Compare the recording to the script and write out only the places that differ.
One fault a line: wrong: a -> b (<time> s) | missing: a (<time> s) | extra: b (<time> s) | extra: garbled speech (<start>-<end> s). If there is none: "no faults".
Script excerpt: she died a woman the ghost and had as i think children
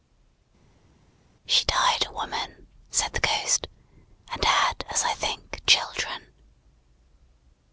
extra: said (2.9 s)